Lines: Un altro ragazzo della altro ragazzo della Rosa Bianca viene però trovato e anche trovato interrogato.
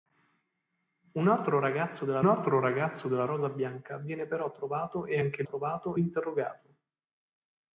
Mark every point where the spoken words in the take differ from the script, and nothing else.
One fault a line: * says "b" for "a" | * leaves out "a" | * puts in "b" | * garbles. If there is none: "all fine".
all fine